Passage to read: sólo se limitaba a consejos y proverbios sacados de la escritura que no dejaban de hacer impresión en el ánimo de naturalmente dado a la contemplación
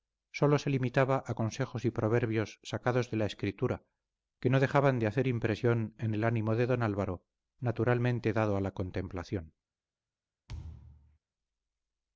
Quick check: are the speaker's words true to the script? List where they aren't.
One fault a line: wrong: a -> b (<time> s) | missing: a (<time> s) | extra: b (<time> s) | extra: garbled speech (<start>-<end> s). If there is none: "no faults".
extra: don álvaro (6.7 s)